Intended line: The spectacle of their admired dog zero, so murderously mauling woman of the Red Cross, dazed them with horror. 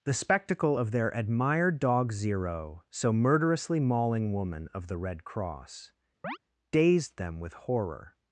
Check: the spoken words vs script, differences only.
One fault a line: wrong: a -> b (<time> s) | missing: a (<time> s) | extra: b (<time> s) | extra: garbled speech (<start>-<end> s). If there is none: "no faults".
no faults